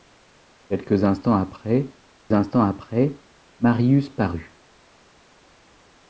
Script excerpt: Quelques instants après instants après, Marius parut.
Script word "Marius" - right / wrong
right